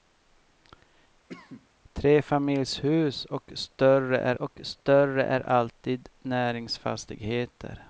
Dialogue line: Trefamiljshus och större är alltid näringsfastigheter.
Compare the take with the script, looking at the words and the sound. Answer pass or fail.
fail